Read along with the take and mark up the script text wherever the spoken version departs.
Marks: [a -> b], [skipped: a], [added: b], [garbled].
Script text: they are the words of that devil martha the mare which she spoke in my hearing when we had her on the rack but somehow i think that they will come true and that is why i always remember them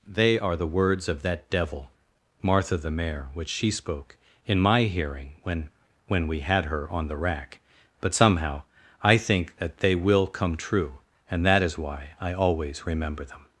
they are the words of that devil martha the mare which she spoke in my hearing when [added: when] we had her on the rack but somehow i think that they will come true and that is why i always remember them